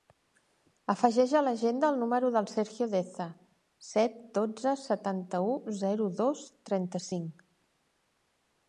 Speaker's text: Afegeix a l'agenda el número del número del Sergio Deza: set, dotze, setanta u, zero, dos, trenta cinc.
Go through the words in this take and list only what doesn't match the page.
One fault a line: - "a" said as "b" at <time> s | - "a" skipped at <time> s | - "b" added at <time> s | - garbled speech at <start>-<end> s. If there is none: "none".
- "número del" skipped at 2.5 s